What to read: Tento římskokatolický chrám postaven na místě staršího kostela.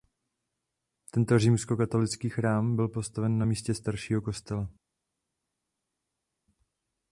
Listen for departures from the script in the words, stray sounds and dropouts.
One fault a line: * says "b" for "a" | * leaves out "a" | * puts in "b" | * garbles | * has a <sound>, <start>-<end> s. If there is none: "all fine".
* puts in "byl"